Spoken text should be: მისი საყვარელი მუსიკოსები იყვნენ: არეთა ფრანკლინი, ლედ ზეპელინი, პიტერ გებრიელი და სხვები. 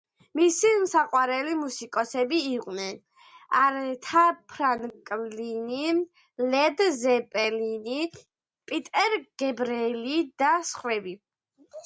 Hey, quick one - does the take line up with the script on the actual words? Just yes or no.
yes